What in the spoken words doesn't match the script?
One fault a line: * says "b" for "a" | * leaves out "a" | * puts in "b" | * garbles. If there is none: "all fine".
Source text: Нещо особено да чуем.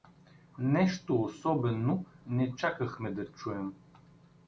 * puts in "не чакахме"